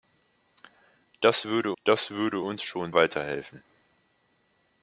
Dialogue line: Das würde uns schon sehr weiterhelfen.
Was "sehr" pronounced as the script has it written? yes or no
no